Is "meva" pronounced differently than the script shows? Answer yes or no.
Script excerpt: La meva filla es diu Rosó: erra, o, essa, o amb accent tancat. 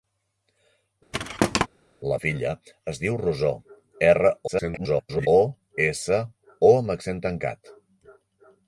yes